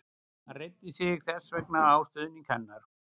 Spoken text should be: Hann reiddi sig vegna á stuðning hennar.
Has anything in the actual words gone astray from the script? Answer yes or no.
yes